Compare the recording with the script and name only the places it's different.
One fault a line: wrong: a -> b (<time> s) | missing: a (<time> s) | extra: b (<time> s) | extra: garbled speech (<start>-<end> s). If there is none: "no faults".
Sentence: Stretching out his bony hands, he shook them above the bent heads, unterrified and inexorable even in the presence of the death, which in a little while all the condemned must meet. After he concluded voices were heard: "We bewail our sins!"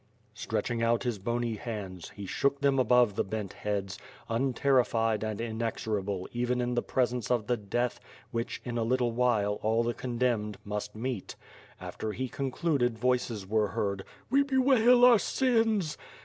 no faults